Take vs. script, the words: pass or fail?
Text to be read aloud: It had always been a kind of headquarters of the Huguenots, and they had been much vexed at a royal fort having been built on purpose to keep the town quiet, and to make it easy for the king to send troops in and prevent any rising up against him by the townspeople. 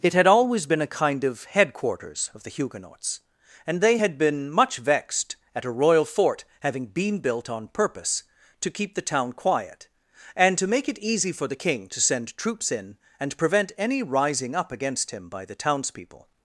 pass